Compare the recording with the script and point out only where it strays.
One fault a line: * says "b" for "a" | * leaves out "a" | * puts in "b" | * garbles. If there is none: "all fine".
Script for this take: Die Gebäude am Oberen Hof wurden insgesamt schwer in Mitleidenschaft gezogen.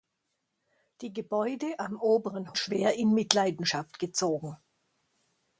* leaves out "Hof wurden insgesamt"